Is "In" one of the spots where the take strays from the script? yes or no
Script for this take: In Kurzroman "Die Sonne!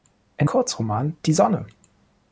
no